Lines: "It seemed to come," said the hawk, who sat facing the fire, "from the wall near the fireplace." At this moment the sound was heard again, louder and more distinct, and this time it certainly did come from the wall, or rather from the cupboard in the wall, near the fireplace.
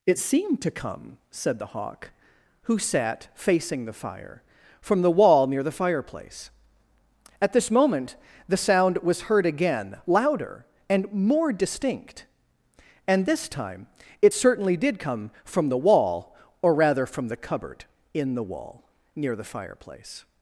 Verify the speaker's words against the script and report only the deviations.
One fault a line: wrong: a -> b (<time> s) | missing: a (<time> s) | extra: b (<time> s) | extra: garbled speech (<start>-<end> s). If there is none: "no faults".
no faults